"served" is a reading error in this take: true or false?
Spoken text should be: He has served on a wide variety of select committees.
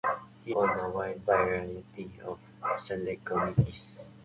true